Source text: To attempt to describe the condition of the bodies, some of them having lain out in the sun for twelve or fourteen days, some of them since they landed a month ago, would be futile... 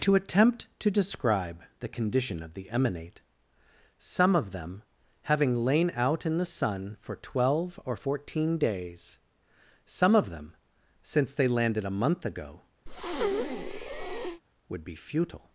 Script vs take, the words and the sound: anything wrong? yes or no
yes